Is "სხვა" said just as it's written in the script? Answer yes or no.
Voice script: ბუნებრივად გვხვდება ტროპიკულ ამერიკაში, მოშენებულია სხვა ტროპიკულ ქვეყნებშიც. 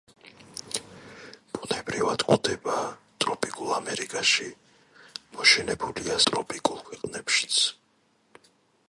no